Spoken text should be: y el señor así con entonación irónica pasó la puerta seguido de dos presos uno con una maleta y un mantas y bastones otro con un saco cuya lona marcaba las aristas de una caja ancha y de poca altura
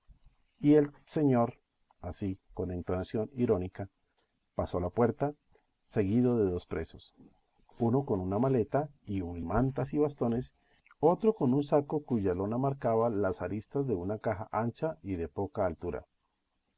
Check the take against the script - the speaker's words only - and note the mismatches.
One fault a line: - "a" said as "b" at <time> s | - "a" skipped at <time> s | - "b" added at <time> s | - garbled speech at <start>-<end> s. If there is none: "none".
none